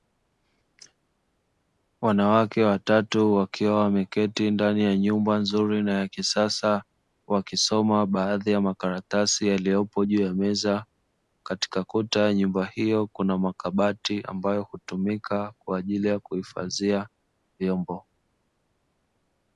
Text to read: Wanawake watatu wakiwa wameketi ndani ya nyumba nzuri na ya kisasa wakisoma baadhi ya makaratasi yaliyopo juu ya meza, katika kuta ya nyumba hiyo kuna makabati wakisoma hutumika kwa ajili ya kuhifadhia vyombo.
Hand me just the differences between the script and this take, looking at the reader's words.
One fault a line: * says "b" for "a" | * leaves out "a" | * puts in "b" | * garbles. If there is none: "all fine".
* says "ambayo" for "wakisoma"